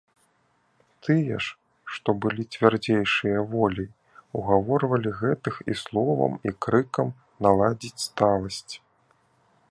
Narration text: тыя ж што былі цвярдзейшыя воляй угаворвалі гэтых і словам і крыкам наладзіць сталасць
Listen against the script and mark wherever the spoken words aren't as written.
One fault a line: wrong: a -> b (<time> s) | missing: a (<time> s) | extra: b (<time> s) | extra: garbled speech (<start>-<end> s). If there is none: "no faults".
no faults